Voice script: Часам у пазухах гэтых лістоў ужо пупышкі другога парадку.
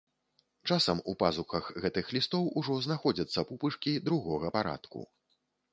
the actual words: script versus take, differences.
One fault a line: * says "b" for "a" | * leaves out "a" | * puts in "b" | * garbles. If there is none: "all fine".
* puts in "знаходзяцца"